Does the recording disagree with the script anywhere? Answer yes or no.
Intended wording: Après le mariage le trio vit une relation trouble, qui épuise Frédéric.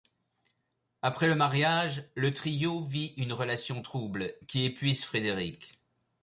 no